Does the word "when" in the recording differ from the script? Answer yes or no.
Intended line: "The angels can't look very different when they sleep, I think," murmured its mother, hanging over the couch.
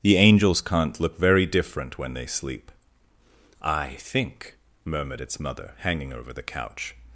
no